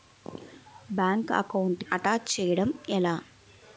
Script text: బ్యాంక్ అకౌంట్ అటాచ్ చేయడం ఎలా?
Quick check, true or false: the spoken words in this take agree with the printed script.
true